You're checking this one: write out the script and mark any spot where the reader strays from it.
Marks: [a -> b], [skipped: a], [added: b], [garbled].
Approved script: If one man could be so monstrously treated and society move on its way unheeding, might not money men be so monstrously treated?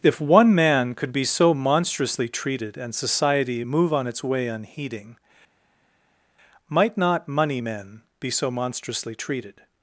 If one man could be so monstrously treated and society move on its way unheeding, might not money men be so monstrously treated?